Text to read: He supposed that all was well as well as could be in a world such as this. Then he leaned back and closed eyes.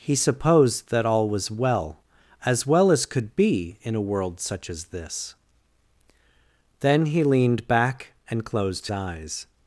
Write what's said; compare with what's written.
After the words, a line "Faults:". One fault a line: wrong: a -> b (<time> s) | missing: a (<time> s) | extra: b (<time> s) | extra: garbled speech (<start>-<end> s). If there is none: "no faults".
He supposed that all was well as well as could be in a world such as this. Then he leaned back and closed eyes.
Faults:
no faults